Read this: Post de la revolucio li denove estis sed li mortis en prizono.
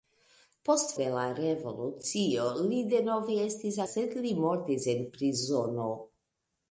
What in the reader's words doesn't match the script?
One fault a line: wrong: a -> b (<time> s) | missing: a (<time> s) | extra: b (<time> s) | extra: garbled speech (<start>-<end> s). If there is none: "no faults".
no faults